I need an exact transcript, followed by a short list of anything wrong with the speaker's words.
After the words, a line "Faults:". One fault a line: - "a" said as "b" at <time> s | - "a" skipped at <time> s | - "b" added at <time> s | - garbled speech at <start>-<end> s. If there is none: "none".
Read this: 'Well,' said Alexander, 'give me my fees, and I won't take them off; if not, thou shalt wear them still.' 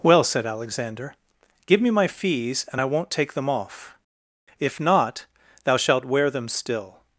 'Well,' said Alexander, 'give me my fees, and I won't take them off; if not, thou shalt wear them still.'
Faults:
none